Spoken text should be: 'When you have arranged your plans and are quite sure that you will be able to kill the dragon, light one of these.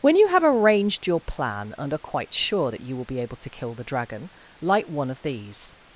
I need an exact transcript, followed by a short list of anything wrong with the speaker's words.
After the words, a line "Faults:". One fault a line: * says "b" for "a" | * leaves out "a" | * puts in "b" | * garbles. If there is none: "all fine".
'When you have arranged your plan and are quite sure that you will be able to kill the dragon, light one of these.
Faults:
* says "plan" for "plans"